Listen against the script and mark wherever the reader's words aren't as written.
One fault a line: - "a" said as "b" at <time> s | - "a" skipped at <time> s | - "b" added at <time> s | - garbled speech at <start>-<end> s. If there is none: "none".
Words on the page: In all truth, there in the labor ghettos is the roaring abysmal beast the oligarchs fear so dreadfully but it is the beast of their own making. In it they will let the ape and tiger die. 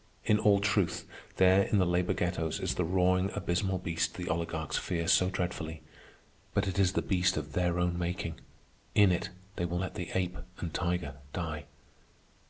none